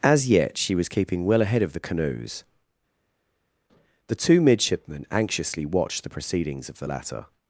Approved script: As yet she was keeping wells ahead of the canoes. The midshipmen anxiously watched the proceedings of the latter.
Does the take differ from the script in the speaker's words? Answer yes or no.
yes